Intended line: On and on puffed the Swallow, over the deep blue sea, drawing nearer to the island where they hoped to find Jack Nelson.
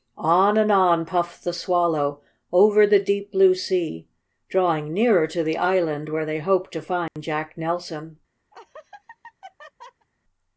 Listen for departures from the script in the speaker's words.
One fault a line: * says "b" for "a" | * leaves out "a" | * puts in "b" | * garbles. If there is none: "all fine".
all fine